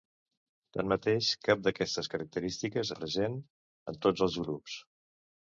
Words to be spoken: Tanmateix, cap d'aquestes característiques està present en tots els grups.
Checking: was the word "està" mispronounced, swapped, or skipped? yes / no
yes